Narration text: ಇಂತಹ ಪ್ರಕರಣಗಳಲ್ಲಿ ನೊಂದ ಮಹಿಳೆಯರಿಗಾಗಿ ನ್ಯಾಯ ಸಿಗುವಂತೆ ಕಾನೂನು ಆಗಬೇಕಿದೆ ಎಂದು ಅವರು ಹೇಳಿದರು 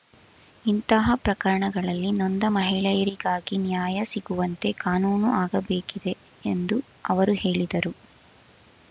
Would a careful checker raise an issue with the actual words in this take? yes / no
no